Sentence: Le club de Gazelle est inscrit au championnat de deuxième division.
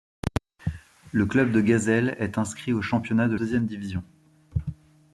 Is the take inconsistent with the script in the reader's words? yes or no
no